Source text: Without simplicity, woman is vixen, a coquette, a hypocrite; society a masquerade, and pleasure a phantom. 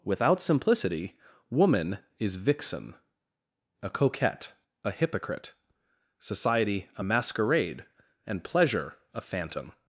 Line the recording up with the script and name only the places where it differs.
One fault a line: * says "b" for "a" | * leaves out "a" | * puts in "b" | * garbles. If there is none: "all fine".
all fine